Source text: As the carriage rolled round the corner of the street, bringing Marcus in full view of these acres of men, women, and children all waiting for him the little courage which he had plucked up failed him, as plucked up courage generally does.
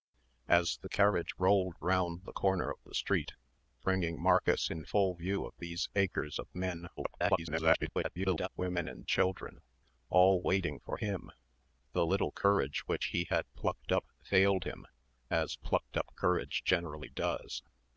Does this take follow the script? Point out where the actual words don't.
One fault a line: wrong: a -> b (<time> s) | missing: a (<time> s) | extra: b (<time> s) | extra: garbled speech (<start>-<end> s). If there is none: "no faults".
extra: garbled speech (7.0-8.5 s)